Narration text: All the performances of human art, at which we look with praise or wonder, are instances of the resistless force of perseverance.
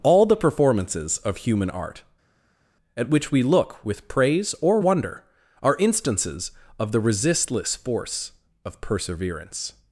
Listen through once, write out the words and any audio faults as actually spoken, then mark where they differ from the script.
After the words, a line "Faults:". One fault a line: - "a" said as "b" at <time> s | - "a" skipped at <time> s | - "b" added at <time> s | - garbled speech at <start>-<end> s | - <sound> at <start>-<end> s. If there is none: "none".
All the performances of human art, at which we look with praise or wonder, are instances of the resistless force of perseverance.
Faults:
none